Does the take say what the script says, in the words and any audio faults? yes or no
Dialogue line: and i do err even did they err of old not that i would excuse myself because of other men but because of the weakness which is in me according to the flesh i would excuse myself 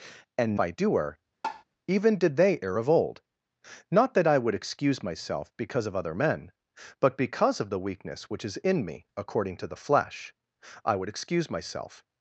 no